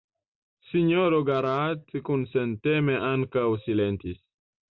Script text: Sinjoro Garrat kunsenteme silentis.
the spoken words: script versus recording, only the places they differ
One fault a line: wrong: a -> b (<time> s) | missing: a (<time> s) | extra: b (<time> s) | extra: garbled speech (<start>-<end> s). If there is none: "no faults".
extra: ankaŭ (3.1 s)